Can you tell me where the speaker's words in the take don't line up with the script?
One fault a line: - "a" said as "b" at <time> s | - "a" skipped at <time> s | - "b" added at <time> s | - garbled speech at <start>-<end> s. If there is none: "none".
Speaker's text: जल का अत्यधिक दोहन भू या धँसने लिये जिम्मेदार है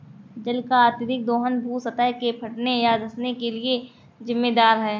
- "सतह के फटने" added at 1.8 s
- "के" added at 3.3 s